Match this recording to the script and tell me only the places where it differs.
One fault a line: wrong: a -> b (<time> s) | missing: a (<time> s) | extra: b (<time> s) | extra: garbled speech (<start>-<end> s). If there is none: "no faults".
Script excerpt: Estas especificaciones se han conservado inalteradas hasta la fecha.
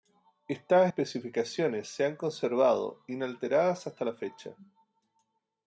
no faults